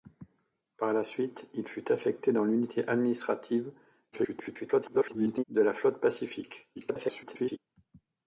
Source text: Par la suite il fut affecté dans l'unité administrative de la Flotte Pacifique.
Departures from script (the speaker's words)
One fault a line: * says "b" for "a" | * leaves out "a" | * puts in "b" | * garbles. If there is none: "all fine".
* garbles
* garbles